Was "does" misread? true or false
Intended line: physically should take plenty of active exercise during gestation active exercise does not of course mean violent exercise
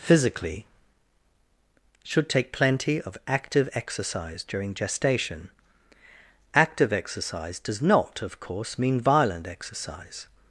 false